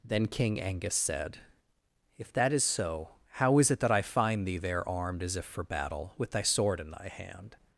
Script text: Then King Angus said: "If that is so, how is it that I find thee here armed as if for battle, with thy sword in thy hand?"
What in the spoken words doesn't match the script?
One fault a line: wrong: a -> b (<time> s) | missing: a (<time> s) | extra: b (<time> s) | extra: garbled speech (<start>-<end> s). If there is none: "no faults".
wrong: here -> there (4.6 s)